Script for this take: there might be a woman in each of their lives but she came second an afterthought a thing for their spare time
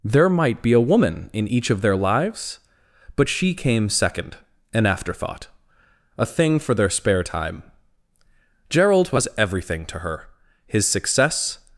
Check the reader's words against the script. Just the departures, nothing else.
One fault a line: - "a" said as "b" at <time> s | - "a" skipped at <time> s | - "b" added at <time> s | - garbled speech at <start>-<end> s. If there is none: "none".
- "gerald was everything to her his success" added at 8.7 s